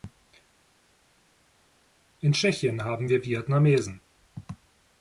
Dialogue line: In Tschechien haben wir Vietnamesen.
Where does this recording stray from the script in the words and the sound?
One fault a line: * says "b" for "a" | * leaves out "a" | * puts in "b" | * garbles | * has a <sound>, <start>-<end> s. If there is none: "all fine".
all fine